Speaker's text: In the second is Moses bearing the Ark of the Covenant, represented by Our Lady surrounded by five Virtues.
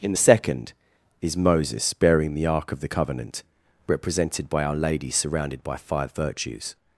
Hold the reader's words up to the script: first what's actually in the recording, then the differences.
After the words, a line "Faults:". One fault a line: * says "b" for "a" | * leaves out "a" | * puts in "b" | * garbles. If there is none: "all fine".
In the second is Moses bearing the Ark of the Covenant, represented by Our Lady surrounded by five Virtues.
Faults:
all fine